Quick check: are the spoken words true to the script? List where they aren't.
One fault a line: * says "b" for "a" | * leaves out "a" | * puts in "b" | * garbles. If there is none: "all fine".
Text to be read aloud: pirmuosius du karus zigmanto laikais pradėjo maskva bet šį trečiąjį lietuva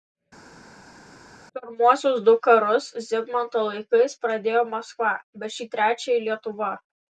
all fine